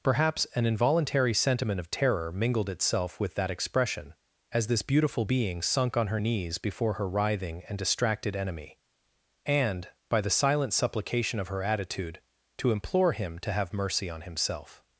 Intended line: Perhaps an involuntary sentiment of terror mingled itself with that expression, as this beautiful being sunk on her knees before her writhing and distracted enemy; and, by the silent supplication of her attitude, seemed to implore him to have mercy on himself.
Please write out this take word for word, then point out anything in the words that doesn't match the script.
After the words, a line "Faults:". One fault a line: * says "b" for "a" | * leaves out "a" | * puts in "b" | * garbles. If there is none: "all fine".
Perhaps an involuntary sentiment of terror mingled itself with that expression, as this beautiful being sunk on her knees before her writhing and distracted enemy; and, by the silent supplication of her attitude, to implore him to have mercy on himself.
Faults:
* leaves out "seemed"